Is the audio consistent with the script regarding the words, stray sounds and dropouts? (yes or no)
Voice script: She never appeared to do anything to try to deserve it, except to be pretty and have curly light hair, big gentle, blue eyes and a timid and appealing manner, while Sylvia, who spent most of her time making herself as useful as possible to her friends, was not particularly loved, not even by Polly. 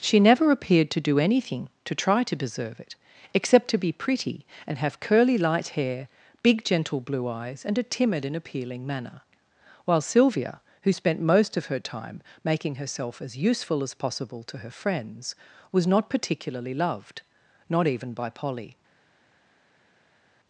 yes